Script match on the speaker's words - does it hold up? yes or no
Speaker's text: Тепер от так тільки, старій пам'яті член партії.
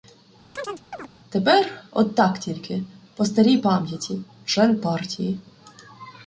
no